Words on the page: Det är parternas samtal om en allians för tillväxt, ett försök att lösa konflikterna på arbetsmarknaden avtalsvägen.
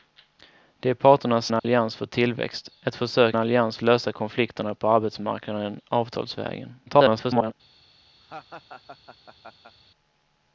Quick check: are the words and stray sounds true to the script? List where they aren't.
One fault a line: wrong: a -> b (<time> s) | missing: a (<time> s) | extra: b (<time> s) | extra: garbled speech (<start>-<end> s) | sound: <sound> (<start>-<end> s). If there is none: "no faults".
missing: samtal om (1.5 s)
sound: dropout (1.6-1.6 s)
wrong: att -> allians (3.3 s)
extra: garbled speech (6.9-7.5 s)
sound: laugh (8.2-9.8 s)